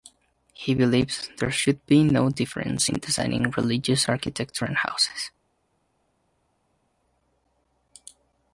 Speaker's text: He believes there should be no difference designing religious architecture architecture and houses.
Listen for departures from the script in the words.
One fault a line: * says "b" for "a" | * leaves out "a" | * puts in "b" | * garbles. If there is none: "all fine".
* puts in "in"
* leaves out "architecture"